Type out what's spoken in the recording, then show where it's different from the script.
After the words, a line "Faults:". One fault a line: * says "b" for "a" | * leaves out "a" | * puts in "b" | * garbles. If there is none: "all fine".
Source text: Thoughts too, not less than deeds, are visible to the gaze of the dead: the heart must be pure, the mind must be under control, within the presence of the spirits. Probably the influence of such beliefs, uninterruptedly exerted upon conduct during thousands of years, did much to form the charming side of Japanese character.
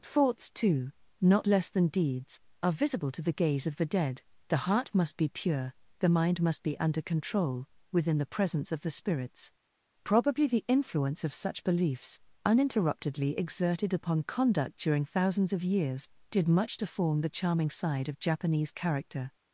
Thoughts too, not less than deeds, are visible to the gaze of the dead: the heart must be pure, the mind must be under control, within the presence of the spirits. Probably the influence of such beliefs, uninterruptedly exerted upon conduct during thousands of years, did much to form the charming side of Japanese character.
Faults:
all fine